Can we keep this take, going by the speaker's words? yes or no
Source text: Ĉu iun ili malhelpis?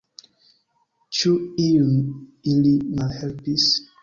yes